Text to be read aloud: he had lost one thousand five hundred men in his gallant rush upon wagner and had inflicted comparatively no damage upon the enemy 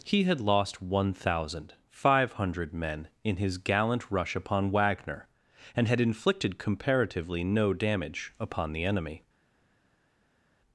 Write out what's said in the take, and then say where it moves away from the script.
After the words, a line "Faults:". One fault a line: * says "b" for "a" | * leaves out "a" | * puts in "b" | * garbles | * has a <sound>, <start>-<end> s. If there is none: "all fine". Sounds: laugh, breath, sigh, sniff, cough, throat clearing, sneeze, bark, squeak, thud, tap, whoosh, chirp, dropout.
he had lost one thousand five hundred men in his gallant rush upon wagner and had inflicted comparatively no damage upon the enemy
Faults:
all fine